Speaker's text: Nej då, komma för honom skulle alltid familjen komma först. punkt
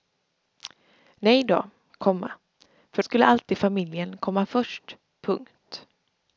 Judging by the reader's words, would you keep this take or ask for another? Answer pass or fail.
fail